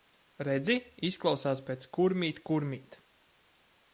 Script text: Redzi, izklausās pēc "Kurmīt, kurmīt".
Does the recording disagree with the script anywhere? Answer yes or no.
no